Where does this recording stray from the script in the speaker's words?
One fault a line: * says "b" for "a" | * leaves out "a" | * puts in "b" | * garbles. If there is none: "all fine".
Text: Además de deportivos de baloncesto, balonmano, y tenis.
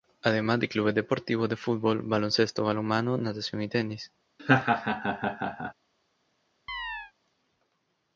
* puts in "clubes"
* puts in "fútbol"
* puts in "natación"